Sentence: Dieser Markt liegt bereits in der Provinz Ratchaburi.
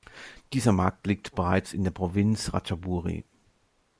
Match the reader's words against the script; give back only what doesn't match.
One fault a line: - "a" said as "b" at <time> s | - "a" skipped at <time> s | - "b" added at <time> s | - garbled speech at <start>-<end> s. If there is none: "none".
none